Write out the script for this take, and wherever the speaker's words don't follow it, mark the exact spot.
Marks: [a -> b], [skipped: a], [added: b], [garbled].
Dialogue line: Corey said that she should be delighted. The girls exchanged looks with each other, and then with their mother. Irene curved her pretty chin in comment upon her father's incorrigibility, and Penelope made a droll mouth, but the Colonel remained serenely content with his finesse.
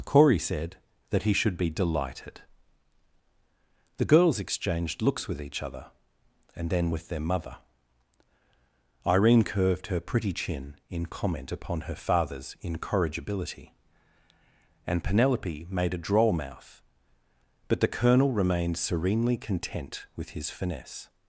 Corey said that [she -> he] should be delighted. The girls exchanged looks with each other, and then with their mother. Irene curved her pretty chin in comment upon her father's incorrigibility, and Penelope made a droll mouth, but the Colonel remained serenely content with his finesse.